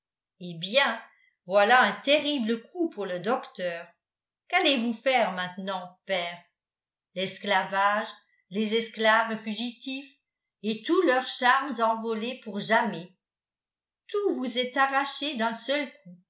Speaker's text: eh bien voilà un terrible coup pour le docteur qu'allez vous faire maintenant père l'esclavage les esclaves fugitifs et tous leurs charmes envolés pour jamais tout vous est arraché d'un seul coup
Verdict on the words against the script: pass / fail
pass